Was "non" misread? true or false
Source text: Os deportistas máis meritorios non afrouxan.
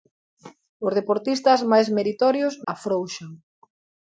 true